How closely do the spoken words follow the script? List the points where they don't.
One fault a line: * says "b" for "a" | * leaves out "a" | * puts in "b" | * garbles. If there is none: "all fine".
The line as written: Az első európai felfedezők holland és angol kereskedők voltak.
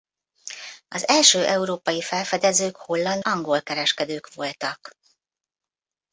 * leaves out "és"